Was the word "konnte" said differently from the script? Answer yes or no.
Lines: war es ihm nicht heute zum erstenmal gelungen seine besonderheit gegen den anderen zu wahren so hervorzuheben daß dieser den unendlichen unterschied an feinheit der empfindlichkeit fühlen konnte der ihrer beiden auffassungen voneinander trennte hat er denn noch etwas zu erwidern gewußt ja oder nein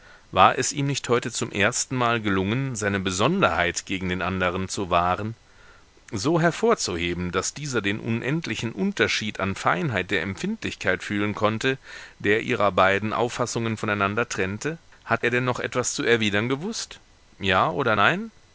no